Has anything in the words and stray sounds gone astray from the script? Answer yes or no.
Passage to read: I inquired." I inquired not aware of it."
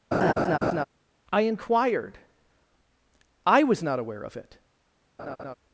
yes